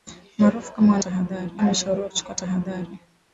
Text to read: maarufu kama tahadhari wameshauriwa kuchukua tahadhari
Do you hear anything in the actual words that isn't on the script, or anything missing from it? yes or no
no